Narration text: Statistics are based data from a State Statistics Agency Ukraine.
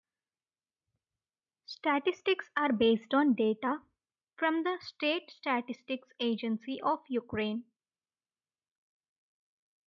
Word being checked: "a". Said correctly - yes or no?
no